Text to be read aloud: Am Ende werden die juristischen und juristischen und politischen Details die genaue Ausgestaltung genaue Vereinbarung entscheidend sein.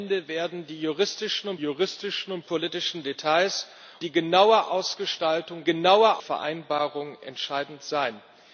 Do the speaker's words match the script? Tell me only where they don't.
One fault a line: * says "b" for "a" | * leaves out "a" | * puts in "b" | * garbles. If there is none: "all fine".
all fine